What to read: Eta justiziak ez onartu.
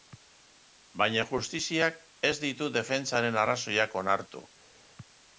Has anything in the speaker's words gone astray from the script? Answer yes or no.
yes